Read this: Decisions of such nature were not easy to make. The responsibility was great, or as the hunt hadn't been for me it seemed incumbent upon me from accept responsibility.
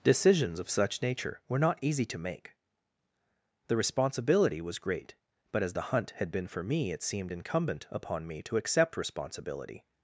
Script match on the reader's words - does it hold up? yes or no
no